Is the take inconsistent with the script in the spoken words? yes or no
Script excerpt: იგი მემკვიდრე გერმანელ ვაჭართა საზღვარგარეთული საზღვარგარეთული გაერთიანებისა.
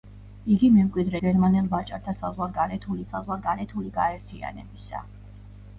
no